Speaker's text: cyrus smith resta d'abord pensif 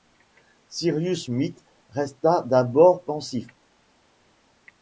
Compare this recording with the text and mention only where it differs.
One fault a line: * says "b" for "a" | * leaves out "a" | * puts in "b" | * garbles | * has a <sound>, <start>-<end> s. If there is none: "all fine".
all fine